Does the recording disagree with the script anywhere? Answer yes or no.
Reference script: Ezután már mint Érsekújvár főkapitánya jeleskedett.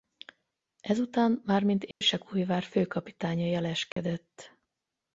no